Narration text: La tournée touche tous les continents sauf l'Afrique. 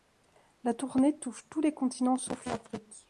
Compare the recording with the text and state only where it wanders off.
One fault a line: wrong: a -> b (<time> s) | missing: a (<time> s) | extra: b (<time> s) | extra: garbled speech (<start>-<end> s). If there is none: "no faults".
no faults